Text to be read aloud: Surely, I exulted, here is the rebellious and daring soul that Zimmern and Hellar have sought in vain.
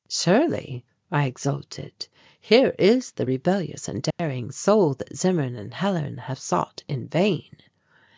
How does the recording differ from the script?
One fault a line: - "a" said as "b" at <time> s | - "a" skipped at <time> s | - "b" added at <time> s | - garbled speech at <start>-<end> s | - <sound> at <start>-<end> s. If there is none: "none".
- dropout at 4.1-4.2 s